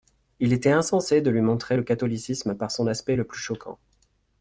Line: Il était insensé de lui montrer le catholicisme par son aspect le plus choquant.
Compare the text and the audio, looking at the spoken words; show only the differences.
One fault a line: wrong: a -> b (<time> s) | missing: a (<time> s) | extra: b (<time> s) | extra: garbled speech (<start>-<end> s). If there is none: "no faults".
no faults